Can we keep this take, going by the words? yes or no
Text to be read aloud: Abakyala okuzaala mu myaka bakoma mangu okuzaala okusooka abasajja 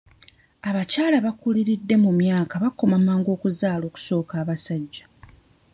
no